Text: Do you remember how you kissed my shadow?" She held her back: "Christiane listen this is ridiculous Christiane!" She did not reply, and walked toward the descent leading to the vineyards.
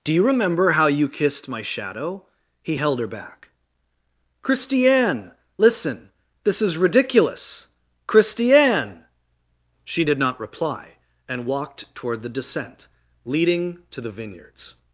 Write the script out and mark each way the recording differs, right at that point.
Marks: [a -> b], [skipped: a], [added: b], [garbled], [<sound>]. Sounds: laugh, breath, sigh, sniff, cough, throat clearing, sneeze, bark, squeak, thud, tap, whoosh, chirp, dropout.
Do you remember how you kissed my shadow?" [She -> He] held her back: "Christiane listen this is ridiculous Christiane!" She did not reply, and walked toward the descent leading to the vineyards.